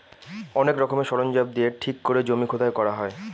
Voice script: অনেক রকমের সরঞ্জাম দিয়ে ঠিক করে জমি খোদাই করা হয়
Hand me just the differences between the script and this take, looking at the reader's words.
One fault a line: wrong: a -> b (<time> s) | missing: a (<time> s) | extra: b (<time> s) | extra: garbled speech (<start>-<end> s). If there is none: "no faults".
no faults